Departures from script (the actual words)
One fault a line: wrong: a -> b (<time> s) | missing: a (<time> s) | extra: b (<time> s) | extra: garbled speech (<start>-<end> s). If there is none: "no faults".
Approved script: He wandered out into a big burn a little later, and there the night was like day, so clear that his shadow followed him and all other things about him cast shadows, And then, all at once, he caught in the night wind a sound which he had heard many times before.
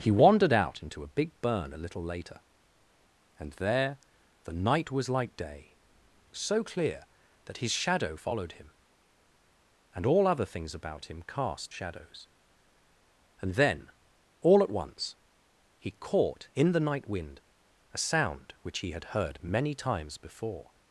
no faults